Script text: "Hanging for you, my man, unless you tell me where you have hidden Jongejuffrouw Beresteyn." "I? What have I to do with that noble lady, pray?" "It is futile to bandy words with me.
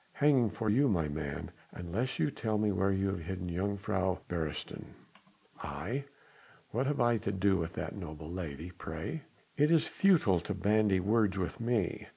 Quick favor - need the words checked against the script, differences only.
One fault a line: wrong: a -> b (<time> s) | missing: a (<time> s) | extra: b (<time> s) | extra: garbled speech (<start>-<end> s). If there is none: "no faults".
no faults